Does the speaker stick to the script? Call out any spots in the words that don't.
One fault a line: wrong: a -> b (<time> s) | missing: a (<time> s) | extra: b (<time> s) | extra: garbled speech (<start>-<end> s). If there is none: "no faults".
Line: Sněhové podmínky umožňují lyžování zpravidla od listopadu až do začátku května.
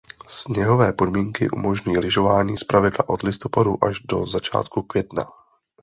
no faults